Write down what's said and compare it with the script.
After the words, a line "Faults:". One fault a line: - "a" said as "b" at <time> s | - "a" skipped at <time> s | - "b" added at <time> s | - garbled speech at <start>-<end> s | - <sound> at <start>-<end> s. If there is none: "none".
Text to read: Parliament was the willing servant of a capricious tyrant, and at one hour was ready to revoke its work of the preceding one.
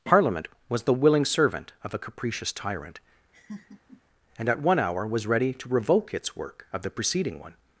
Parliament was the willing servant of a capricious tyrant, and at one hour was ready to revoke its work of the preceding one.
Faults:
- laugh at 3.3-4.0 s